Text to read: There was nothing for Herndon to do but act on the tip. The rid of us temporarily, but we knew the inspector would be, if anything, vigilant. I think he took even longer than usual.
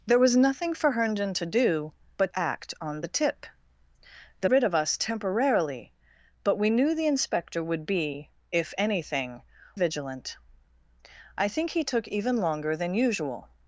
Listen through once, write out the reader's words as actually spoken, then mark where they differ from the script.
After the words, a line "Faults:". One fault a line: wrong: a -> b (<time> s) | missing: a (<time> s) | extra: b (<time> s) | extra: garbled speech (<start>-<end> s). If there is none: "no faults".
There was nothing for Herndon to do but act on the tip. The rid of us temporarily, but we knew the inspector would be, if anything, vigilant. I think he took even longer than usual.
Faults:
no faults